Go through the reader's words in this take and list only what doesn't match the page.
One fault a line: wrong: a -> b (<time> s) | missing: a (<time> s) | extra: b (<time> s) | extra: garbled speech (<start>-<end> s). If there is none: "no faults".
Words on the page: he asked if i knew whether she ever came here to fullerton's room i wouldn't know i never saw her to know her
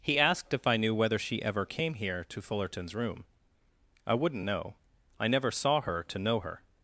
no faults